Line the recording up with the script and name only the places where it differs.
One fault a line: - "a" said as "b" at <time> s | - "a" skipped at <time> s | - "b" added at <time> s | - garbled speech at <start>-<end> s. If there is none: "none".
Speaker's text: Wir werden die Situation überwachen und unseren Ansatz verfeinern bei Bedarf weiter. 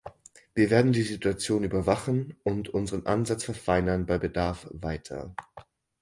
none